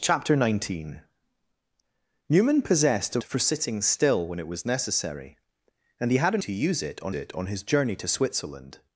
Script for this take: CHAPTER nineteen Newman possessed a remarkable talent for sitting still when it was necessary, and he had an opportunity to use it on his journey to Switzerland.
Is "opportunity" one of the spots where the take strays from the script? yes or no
yes